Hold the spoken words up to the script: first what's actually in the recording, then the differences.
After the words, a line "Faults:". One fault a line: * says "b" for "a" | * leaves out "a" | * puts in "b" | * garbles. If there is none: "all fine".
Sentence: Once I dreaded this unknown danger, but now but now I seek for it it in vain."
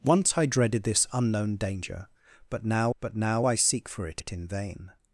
Once I dreaded this unknown danger, but now but now I seek for it it in vain."
Faults:
all fine